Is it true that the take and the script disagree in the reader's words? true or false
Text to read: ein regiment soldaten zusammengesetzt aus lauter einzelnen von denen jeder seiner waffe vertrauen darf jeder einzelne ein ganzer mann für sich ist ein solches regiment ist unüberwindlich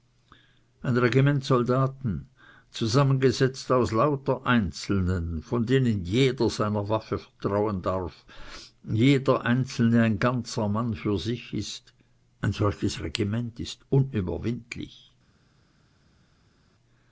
false